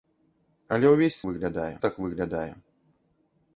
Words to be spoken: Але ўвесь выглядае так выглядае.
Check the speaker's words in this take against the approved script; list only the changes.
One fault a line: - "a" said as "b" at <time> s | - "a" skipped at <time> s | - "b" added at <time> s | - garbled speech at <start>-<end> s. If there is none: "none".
none